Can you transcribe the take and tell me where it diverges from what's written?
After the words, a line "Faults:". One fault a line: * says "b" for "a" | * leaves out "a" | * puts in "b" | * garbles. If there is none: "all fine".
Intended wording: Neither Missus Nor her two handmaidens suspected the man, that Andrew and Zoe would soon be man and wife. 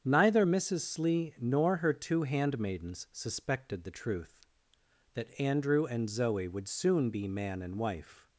Neither Missus Slee nor her two handmaidens suspected the truth, that Andrew and Zoe would soon be man and wife.
Faults:
* puts in "Slee"
* says "truth" for "man"